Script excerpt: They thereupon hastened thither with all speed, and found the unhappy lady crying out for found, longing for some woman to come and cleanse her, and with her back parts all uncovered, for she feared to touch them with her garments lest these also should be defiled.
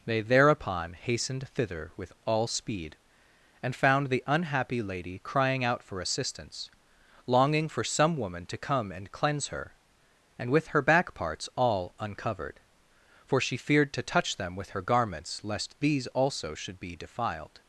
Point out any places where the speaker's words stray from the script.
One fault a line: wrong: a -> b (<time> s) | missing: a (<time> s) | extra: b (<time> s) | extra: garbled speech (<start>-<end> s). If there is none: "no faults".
wrong: found -> assistance (6.0 s)